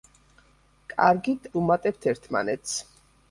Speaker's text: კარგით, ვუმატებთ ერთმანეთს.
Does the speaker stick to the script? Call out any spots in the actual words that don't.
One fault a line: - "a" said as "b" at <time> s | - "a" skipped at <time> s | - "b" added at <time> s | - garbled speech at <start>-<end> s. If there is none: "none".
none